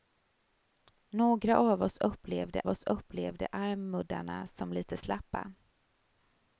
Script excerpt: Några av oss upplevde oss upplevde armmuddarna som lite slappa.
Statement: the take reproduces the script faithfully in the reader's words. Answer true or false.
true